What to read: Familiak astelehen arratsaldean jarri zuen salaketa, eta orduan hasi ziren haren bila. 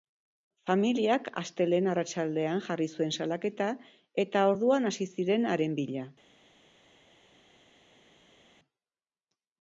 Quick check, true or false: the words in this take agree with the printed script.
true